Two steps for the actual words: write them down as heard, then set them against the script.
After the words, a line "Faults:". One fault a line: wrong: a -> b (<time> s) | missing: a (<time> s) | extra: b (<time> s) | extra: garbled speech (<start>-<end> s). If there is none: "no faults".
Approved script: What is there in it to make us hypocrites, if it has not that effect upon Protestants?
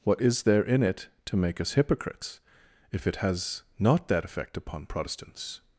What is there in it to make us hypocrites, if it has not that effect upon Protestants?
Faults:
no faults